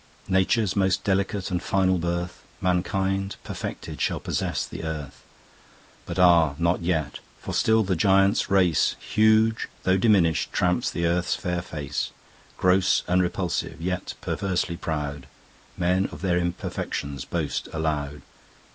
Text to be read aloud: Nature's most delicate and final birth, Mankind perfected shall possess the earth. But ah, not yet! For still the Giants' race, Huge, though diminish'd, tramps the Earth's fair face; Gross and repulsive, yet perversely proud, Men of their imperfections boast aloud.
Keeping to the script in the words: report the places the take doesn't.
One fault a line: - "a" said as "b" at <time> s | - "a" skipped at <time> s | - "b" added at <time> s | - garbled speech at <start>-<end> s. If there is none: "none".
none